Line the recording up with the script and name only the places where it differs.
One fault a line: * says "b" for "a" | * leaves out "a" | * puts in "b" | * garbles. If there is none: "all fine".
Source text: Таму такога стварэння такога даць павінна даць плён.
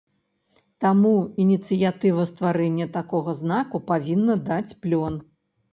* says "ініцыятыва" for "такога"
* says "знаку" for "даць"